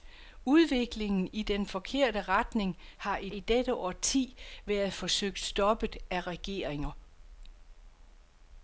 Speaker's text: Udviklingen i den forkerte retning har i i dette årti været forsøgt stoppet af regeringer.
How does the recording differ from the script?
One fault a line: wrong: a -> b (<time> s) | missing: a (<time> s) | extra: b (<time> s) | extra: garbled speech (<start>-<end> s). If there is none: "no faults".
no faults